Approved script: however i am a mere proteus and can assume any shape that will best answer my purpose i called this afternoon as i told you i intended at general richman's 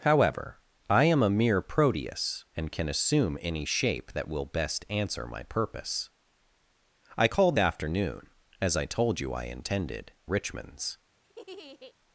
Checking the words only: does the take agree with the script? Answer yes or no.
no